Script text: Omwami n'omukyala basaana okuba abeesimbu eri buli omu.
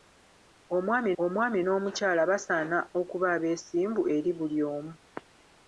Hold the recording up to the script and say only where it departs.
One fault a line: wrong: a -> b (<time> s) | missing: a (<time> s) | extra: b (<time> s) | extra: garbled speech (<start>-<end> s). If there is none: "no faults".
extra: omwami (1.2 s)